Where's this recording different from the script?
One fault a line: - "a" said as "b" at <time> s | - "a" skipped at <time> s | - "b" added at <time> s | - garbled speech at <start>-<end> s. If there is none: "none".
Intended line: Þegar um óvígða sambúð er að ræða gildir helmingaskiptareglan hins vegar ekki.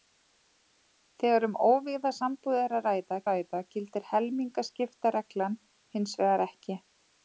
- "ræða" added at 3.3 s